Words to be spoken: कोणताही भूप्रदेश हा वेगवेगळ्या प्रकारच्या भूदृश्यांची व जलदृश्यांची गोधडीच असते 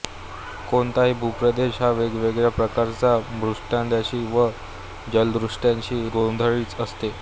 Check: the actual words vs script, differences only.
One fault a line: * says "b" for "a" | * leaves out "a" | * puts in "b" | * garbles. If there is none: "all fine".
all fine